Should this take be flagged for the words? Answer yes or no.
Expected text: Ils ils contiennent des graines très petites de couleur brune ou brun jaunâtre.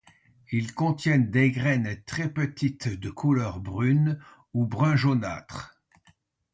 yes